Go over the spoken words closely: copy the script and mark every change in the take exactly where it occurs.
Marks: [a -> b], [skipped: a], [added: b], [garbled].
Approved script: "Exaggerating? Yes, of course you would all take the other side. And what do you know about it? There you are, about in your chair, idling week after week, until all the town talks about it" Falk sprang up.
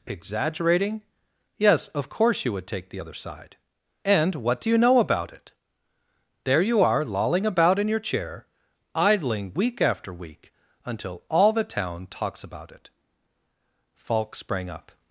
"Exaggerating? Yes, of course you would [skipped: all] take the other side. And what do you know about it? There you are, [added: lolling] about in your chair, idling week after week, until all the town talks about it" Falk sprang up.